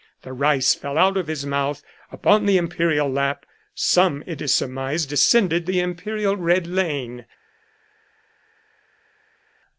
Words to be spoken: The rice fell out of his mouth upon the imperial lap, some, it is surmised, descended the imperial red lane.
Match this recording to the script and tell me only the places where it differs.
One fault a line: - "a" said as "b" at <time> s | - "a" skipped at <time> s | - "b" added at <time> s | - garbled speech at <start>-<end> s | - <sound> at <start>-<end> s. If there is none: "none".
none